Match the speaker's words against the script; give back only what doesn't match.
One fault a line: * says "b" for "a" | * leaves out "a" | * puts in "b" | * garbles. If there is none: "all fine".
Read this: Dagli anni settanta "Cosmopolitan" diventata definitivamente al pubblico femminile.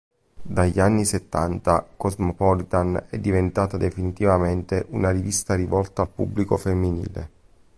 * puts in "è"
* puts in "una rivista rivolta"